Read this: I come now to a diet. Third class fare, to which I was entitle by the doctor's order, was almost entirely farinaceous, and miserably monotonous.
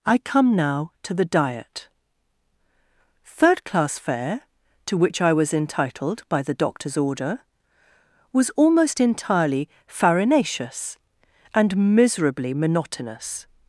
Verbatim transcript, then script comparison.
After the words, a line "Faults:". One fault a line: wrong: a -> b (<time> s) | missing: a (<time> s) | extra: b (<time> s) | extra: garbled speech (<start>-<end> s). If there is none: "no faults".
I come now to the diet. Third class fare, to which I was entitled by the doctor's order, was almost entirely farinaceous, and miserably monotonous.
Faults:
wrong: a -> the (1.1 s)
wrong: entitle -> entitled (5.5 s)